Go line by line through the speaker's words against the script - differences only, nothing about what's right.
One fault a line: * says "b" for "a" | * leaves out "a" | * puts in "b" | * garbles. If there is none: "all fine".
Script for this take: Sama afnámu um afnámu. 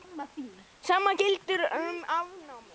* says "gildir" for "afnámu"